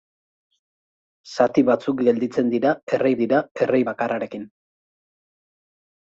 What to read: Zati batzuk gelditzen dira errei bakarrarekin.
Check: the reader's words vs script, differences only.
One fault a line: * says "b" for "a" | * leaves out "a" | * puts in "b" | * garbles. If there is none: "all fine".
* puts in "dira errei"